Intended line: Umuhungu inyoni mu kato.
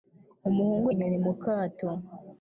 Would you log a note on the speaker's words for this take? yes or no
no